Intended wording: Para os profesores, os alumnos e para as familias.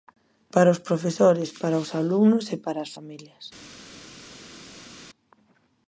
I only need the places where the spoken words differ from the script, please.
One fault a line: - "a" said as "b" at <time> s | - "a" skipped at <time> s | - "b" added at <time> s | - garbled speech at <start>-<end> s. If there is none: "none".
- "para" added at 1.6 s